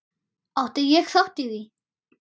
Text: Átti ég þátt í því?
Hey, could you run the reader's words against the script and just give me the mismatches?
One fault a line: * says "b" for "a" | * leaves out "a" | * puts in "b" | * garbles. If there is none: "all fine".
all fine